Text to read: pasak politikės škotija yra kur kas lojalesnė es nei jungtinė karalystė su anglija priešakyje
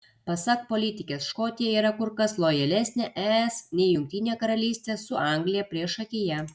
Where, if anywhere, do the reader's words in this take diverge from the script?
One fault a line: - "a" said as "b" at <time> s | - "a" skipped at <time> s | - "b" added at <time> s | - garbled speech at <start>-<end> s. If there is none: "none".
none